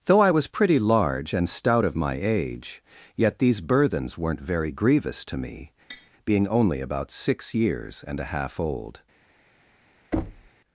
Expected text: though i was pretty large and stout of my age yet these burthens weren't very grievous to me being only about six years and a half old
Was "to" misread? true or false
false